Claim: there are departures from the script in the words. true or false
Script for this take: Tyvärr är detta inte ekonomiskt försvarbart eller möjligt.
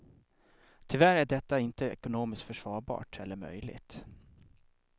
false